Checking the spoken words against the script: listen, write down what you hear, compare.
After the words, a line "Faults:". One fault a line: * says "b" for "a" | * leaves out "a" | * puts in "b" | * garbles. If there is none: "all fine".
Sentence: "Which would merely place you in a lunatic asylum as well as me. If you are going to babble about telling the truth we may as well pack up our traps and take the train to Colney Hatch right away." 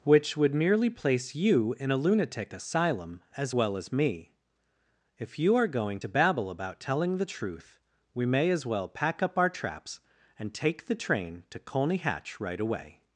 "Which would merely place you in a lunatic asylum as well as me. If you are going to babble about telling the truth we may as well pack up our traps and take the train to Colney Hatch right away."
Faults:
all fine